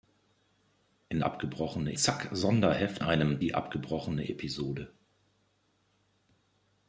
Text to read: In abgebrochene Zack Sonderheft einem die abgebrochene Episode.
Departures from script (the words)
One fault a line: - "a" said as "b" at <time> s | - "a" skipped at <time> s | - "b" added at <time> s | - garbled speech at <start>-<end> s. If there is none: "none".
none